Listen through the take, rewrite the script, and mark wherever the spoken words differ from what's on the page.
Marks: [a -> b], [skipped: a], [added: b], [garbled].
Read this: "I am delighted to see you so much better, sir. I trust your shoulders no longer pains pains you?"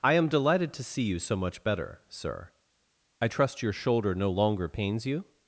"I am delighted to see you so much better, sir. I trust your [shoulders -> shoulder] no longer pains [skipped: pains] you?"